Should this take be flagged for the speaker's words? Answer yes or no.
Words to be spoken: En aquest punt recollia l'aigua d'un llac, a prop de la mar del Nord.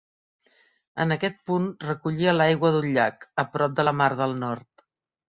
no